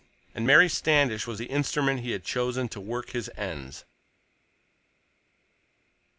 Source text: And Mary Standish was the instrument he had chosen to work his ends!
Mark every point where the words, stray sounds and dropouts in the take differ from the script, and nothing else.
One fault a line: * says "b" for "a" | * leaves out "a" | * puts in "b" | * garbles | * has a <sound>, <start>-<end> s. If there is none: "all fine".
all fine